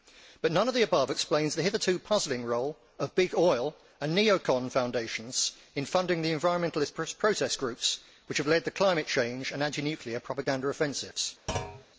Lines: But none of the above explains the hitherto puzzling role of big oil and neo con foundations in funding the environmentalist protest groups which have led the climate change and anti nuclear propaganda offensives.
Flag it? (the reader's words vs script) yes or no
no